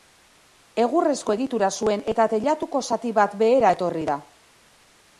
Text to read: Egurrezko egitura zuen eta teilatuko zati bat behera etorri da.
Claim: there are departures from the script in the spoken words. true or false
false